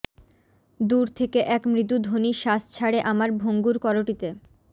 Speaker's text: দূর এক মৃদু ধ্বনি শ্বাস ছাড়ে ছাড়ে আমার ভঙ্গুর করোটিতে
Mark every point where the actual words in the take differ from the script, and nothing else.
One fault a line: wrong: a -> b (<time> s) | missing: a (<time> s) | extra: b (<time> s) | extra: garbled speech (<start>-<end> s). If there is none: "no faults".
extra: থেকে (1.1 s)
missing: ছাড়ে (3.0 s)